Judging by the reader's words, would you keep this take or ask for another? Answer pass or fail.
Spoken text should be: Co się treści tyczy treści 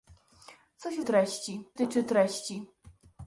pass